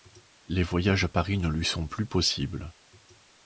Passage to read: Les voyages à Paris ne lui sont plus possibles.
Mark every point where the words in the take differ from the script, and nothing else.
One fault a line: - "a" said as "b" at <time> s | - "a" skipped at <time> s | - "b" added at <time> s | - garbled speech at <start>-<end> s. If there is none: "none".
none